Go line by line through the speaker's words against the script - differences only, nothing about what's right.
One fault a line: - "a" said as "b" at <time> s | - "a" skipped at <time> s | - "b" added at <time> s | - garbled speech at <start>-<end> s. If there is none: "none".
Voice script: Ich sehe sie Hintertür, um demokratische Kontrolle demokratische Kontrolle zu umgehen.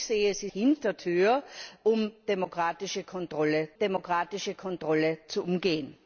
none